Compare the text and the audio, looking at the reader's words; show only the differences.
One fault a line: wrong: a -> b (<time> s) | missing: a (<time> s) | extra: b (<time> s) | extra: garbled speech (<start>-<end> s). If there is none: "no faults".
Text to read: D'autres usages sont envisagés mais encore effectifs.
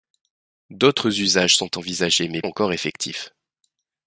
no faults